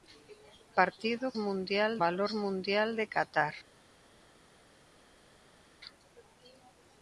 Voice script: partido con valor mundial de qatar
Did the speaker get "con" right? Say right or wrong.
wrong